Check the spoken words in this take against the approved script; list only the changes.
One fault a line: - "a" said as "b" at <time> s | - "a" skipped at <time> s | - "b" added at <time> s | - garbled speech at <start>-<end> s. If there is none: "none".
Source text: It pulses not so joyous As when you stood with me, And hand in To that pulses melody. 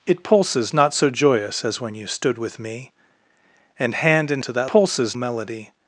none